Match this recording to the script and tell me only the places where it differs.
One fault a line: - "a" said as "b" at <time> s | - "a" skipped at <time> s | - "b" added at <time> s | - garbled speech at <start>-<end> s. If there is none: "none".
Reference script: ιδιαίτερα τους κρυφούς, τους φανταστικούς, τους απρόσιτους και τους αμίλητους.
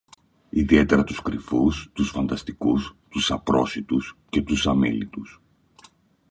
none